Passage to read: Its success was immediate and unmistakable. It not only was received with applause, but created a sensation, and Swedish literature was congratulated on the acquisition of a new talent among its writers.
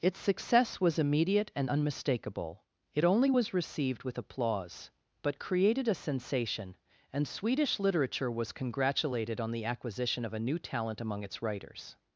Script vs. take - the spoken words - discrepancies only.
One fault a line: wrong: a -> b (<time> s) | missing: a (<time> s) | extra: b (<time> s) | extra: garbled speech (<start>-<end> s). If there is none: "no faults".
missing: not (3.0 s)